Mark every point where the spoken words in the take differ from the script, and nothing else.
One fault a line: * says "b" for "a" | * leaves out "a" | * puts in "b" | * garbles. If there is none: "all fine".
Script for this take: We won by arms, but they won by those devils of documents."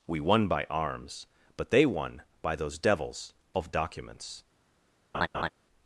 all fine